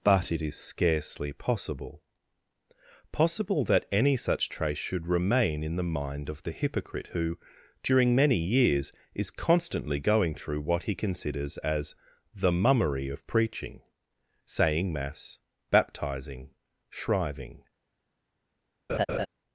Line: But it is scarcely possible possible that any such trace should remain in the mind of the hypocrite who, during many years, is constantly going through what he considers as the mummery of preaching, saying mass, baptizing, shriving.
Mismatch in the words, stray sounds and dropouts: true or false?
true